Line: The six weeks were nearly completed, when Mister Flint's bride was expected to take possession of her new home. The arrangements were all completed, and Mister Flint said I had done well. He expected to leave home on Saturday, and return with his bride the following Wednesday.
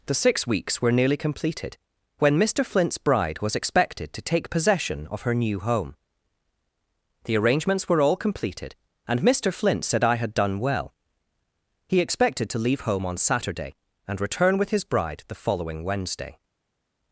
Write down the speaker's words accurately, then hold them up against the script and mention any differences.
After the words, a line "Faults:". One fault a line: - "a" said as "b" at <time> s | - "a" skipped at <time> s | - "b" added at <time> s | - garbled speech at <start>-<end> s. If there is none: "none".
The six weeks were nearly completed, when Mister Flint's bride was expected to take possession of her new home. The arrangements were all completed, and Mister Flint said I had done well. He expected to leave home on Saturday, and return with his bride the following Wednesday.
Faults:
none